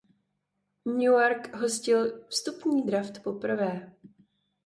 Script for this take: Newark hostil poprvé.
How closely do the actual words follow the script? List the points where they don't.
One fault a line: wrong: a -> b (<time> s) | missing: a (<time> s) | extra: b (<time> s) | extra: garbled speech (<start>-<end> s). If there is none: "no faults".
extra: vstupní draft (2.3 s)